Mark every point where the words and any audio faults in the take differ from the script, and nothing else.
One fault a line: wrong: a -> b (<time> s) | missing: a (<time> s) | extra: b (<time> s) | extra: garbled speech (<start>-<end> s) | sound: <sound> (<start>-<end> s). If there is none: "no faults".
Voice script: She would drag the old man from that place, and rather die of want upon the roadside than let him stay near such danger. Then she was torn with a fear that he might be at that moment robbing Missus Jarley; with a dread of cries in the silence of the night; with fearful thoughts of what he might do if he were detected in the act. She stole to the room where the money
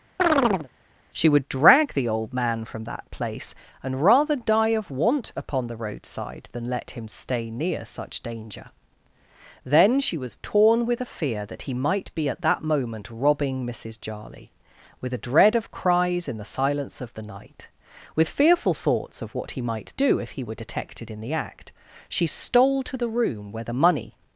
sound: chirp (0.2-0.7 s)